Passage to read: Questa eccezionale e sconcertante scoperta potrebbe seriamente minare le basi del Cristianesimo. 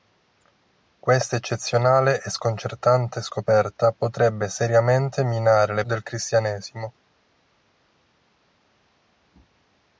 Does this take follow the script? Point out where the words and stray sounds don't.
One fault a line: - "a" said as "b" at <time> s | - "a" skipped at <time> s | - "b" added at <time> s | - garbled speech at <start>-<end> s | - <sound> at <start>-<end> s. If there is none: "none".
- "basi" skipped at 5.8 s